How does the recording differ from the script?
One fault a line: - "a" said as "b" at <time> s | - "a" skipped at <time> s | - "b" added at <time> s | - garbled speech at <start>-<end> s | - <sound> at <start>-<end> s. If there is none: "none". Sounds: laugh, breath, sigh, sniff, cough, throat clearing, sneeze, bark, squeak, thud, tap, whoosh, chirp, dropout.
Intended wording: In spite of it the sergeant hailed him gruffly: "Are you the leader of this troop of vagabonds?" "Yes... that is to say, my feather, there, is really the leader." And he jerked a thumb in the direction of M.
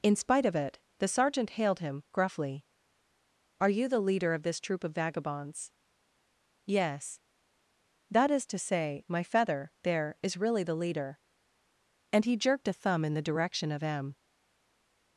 none